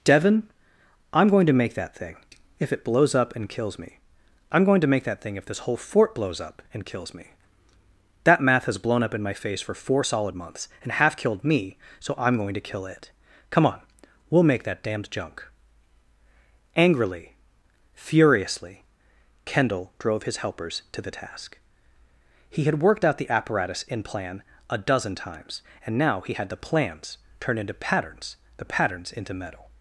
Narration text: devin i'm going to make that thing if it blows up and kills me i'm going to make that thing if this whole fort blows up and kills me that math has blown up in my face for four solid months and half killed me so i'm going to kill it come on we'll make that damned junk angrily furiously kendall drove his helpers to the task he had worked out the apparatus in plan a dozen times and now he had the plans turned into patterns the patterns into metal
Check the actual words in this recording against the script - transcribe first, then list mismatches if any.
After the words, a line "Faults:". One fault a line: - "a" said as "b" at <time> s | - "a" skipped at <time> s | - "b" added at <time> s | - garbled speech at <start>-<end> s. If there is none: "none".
devin i'm going to make that thing if it blows up and kills me i'm going to make that thing if this whole fort blows up and kills me that math has blown up in my face for four solid months and half killed me so i'm going to kill it come on we'll make that damned junk angrily furiously kendall drove his helpers to the task he had worked out the apparatus in plan a dozen times and now he had the plans turn into patterns the patterns into metal
Faults:
- "turned" said as "turn" at 27.4 s